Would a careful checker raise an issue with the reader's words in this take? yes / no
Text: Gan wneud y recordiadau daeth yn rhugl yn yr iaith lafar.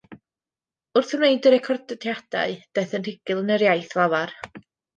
yes